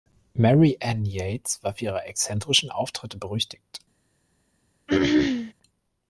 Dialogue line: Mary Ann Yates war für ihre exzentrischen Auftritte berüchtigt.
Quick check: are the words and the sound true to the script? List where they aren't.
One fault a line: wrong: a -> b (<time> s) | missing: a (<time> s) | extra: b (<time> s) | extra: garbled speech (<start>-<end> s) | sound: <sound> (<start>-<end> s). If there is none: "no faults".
sound: throat clearing (4.9-5.5 s)